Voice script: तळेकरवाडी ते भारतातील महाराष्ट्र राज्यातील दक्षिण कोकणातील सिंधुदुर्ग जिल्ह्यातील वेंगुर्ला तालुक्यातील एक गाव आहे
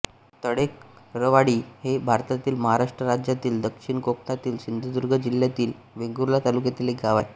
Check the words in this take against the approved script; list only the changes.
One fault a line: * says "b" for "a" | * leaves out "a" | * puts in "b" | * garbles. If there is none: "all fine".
* says "हे" for "ते"